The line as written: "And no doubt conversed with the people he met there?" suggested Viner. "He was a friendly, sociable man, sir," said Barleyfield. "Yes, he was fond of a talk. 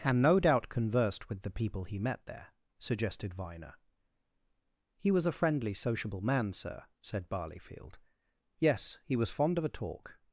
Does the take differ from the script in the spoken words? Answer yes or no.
no